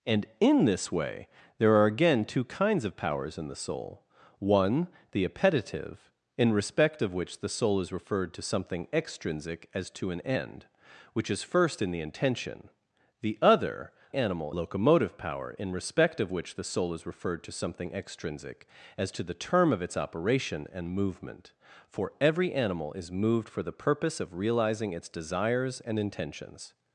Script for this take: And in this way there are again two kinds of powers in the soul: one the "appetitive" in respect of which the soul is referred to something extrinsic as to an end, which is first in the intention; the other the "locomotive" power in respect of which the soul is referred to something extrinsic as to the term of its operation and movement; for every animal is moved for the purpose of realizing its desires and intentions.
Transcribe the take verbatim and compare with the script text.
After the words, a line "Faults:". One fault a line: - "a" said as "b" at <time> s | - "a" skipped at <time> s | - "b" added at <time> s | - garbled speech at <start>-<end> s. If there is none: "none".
And in this way there are again two kinds of powers in the soul: one the "appetitive" in respect of which the soul is referred to something extrinsic as to an end, which is first in the intention; the other animal "locomotive" power in respect of which the soul is referred to something extrinsic as to the term of its operation and movement; for every animal is moved for the purpose of realizing its desires and intentions.
Faults:
- "the" said as "animal" at 14.1 s